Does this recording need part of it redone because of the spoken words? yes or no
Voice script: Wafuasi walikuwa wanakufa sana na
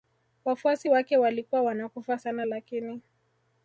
yes